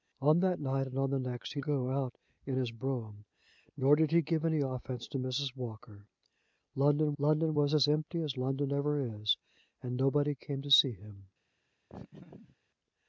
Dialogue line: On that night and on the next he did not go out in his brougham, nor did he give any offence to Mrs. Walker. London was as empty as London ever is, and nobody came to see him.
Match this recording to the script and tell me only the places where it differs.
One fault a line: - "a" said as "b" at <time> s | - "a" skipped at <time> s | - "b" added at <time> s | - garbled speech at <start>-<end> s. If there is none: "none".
- "did not" skipped at 1.6 s
- "london" added at 7.2 s